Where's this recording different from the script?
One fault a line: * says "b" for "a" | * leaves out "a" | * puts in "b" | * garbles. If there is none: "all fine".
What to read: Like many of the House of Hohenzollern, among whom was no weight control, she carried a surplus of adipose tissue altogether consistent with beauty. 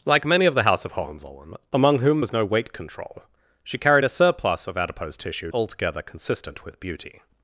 all fine